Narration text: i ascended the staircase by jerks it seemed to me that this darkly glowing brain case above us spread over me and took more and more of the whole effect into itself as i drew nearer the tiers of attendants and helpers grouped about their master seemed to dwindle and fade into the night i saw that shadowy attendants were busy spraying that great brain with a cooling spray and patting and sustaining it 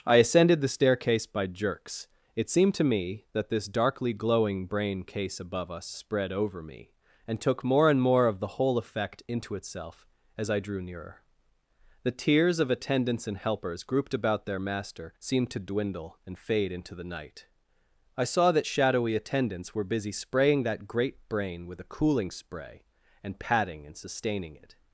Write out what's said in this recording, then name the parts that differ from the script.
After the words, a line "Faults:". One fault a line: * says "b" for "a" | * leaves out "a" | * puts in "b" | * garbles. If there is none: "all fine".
i ascended the staircase by jerks it seemed to me that this darkly glowing brain case above us spread over me and took more and more of the whole effect into itself as i drew nearer the tiers of attendants and helpers grouped about their master seemed to dwindle and fade into the night i saw that shadowy attendants were busy spraying that great brain with a cooling spray and patting and sustaining it
Faults:
all fine